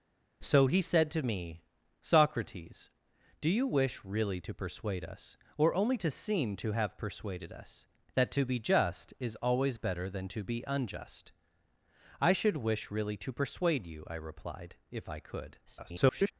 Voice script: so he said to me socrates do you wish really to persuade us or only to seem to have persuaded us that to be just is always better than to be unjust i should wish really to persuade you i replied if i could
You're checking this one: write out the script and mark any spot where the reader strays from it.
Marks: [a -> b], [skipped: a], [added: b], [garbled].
so he said to me socrates do you wish really to persuade us or only to seem to have persuaded us that to be just is always better than to be unjust i should wish really to persuade you i replied if i could [garbled]